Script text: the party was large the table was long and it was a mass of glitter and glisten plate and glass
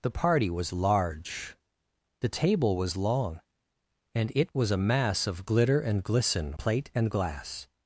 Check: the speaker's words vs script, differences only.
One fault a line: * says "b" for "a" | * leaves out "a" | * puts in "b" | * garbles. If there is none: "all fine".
all fine